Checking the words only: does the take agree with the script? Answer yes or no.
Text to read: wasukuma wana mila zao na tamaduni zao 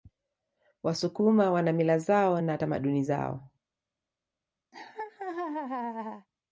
yes